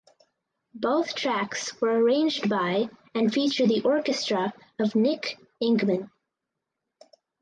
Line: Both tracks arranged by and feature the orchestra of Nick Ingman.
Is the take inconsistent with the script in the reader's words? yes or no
yes